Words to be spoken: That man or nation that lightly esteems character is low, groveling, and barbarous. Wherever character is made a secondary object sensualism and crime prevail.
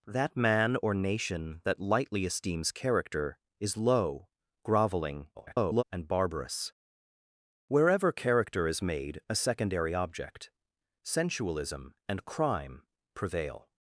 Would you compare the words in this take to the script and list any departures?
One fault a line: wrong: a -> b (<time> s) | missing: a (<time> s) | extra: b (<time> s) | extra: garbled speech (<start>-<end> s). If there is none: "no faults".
extra: garbled speech (5.3-5.8 s)